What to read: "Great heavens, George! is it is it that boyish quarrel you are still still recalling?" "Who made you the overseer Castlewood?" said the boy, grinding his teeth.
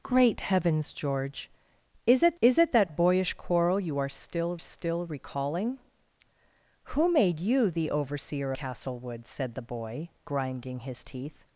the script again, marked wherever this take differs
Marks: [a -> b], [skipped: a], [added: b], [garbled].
"Great heavens, George! is it is it that boyish quarrel you are still still recalling?" "Who made you the overseer Castlewood?" said the boy, grinding his teeth.